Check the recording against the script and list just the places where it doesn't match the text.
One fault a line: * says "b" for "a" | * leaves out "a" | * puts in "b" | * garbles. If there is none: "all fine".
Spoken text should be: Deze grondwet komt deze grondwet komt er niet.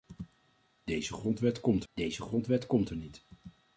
all fine